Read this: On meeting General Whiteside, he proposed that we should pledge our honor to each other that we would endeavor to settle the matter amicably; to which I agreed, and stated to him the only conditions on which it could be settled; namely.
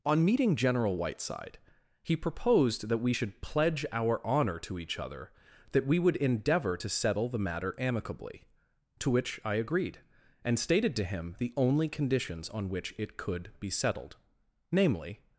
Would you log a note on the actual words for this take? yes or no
no